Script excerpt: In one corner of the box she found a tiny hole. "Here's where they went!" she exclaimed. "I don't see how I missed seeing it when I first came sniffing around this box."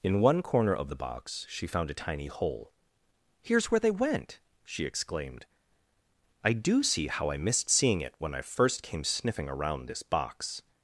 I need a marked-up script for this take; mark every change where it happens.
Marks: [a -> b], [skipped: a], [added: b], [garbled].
In one corner of the box she found a tiny hole. "Here's where they went!" she exclaimed. "I [don't -> do] see how I missed seeing it when I first came sniffing around this box."